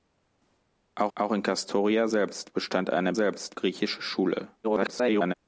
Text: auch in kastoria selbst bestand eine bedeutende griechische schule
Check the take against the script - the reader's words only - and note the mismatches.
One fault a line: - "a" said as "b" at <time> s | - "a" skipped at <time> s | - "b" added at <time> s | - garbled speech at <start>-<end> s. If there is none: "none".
- "auch" added at 1.1 s
- "bedeutende" said as "selbst" at 3.1 s
- garbled speech at 4.6-5.3 s